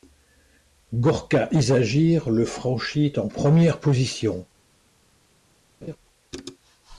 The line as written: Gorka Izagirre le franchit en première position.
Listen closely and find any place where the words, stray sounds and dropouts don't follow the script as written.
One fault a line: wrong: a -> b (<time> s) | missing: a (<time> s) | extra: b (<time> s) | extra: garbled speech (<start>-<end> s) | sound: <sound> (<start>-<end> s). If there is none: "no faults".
sound: laugh (5.8-6.0 s)